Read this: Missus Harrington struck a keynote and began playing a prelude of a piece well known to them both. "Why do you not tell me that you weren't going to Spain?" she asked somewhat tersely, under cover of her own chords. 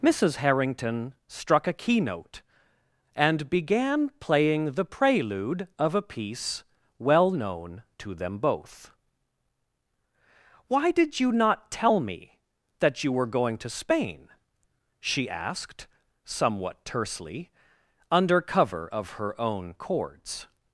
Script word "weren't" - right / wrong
wrong